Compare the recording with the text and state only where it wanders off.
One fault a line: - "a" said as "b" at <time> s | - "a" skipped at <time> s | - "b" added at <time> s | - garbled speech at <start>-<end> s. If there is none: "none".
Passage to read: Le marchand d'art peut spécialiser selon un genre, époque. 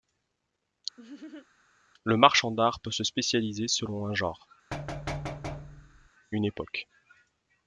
- "se" added at 2.9 s
- "une" added at 6.3 s